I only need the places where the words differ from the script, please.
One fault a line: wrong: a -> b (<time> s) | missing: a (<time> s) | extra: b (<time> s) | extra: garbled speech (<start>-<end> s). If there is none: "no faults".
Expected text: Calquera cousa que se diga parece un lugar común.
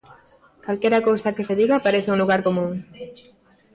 no faults